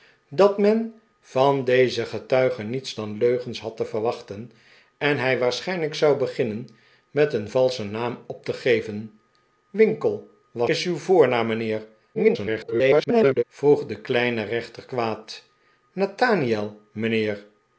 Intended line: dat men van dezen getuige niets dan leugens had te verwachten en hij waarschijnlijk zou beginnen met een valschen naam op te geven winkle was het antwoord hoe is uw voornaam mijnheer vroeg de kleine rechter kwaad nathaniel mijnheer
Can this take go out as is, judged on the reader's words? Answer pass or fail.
fail